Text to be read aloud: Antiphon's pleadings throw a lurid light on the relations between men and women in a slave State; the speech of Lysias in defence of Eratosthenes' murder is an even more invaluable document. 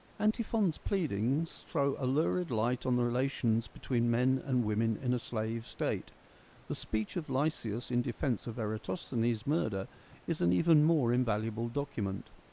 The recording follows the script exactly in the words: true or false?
true